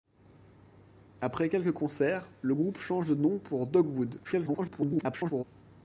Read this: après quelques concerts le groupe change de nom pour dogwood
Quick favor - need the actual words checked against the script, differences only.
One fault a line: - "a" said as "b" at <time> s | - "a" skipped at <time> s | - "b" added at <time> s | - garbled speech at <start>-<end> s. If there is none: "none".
- garbled speech at 4.2-5.4 s